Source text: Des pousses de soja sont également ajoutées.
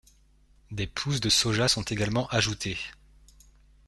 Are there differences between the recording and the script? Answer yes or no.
no